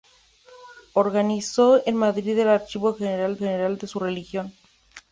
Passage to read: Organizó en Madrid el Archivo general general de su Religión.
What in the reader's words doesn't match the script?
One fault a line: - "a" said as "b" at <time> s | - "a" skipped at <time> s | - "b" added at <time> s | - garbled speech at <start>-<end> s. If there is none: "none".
none